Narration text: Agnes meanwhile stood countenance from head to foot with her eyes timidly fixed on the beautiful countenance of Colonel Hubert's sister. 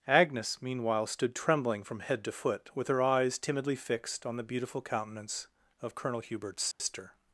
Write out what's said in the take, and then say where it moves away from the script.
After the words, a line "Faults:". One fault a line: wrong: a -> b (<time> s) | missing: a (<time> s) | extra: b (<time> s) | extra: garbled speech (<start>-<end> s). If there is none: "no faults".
Agnes meanwhile stood trembling from head to foot with her eyes timidly fixed on the beautiful countenance of Colonel Hubert's sister.
Faults:
wrong: countenance -> trembling (1.4 s)